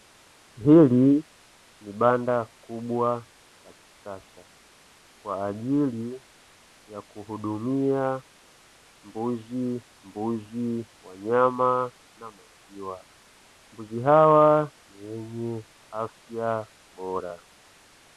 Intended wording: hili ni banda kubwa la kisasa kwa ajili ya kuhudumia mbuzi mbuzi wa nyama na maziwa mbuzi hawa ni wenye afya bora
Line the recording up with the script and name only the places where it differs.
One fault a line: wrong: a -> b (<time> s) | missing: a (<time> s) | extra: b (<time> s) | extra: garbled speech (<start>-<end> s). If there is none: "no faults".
no faults